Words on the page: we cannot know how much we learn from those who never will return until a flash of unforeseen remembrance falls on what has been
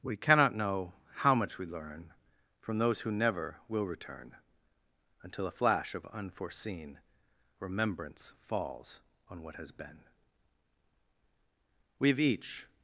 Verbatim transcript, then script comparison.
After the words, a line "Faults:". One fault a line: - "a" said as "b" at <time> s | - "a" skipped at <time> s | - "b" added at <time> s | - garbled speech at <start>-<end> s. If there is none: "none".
we cannot know how much we learn from those who never will return until a flash of unforeseen remembrance falls on what has been we've each
Faults:
- "we've each" added at 12.0 s